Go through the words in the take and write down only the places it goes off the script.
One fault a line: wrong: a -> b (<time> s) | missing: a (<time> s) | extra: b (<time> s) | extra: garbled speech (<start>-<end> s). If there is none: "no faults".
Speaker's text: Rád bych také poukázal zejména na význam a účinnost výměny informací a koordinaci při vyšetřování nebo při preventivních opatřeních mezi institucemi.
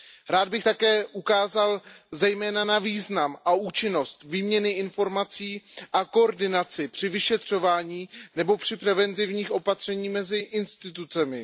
no faults